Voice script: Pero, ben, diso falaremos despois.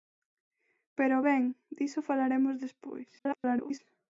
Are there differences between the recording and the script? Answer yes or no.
yes